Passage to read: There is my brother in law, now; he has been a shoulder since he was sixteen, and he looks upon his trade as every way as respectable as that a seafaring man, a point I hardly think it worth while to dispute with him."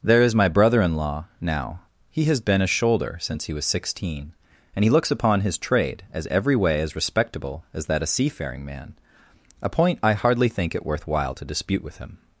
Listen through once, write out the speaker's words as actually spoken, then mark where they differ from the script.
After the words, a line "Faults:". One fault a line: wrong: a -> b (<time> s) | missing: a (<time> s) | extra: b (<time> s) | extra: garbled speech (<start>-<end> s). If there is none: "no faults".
There is my brother in law, now; he has been a shoulder since he was sixteen, and he looks upon his trade as every way as respectable as that a seafaring man, a point I hardly think it worth while to dispute with him."
Faults:
no faults